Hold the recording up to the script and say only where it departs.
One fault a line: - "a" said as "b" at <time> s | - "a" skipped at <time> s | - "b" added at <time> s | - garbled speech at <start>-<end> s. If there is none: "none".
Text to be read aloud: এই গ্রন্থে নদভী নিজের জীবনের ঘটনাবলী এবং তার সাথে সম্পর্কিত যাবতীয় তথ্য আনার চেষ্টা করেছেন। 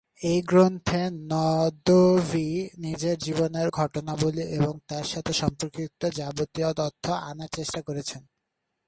none